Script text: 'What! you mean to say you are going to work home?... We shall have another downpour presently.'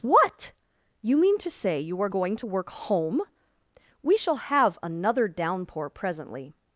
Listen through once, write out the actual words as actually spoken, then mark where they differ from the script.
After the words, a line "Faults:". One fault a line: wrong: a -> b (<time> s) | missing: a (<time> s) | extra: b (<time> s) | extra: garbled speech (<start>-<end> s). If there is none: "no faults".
'What! you mean to say you are going to work home?... We shall have another downpour presently.'
Faults:
no faults